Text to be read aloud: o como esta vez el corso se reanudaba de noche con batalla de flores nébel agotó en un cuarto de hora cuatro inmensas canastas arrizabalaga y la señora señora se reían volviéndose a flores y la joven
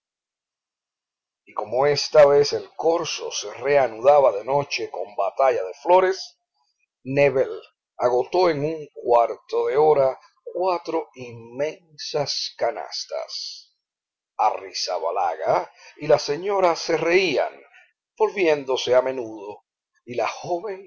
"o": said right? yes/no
no